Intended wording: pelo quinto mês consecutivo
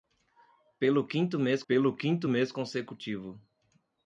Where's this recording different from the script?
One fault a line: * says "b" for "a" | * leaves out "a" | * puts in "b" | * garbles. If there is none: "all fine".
* puts in "pelo quinto mês"